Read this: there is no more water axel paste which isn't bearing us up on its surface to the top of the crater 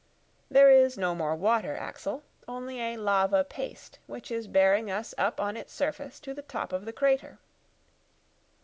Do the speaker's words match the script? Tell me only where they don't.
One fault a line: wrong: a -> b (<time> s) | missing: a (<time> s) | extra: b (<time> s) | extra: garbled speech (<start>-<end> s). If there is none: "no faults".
extra: only a lava (2.5 s)
wrong: isn't -> is (4.3 s)